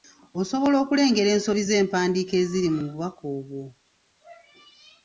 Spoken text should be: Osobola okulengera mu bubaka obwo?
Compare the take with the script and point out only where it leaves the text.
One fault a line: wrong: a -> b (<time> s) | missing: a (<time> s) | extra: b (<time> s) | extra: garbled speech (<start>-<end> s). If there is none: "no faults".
extra: ensobi z'empandiika eziri (1.4 s)